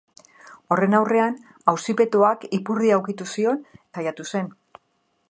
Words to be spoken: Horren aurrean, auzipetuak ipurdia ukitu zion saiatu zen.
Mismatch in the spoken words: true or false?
false